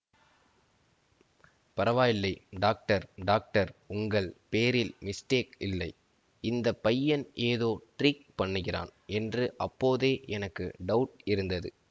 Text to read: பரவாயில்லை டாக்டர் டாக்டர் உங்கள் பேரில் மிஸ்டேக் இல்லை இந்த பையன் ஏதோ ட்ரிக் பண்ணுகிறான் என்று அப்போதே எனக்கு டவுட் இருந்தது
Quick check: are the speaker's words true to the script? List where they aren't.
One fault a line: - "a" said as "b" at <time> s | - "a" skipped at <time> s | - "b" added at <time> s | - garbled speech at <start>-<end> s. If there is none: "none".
none